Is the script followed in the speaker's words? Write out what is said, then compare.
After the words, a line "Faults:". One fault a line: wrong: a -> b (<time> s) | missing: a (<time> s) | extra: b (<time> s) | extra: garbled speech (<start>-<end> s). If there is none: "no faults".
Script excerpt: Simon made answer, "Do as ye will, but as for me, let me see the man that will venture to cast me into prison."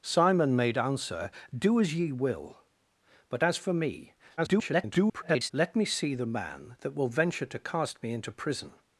Simon made answer, "Do as ye will, but as for me, [garbled] let me see the man that will venture to cast me into prison."
Faults:
extra: garbled speech (4.4-5.5 s)